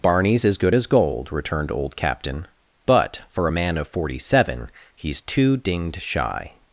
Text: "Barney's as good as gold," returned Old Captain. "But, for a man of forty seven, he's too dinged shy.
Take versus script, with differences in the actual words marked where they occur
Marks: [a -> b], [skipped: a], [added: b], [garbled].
"Barney's as good as gold," returned Old Captain. "But, for a man of forty seven, he's too dinged shy.